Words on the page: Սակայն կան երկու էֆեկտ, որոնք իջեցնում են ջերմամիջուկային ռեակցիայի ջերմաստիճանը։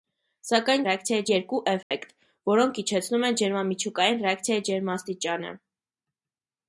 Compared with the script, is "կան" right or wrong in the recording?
wrong